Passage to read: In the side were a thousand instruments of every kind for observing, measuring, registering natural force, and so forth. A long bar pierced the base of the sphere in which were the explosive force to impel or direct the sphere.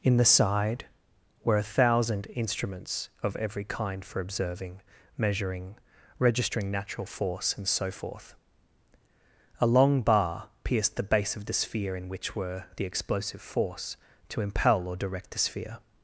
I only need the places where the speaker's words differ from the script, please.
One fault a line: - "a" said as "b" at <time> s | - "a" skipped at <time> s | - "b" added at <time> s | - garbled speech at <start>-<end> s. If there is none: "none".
none